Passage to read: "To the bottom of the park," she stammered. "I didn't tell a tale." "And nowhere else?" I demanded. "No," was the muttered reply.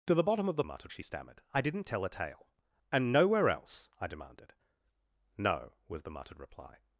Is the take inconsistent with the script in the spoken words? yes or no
yes